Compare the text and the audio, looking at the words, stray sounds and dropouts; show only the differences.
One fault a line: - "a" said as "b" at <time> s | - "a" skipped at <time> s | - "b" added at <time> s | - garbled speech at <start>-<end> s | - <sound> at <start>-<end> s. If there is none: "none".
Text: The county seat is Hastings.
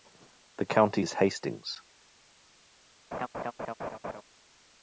- "seat" skipped at 1.0 s
- laugh at 3.1-4.2 s